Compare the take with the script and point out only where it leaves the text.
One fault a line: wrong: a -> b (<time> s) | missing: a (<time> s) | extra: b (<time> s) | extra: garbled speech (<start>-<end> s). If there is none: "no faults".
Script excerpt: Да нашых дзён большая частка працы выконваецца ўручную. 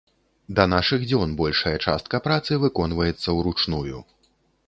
no faults